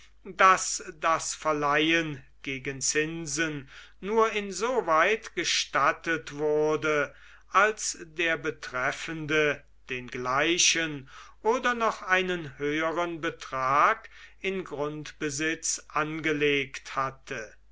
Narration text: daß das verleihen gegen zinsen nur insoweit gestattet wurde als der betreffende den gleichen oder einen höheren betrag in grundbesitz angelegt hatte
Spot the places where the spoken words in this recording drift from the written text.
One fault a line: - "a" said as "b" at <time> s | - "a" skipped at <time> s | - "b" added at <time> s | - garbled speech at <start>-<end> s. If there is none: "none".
- "noch" added at 11.7 s